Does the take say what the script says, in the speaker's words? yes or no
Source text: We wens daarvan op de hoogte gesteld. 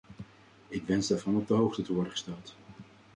no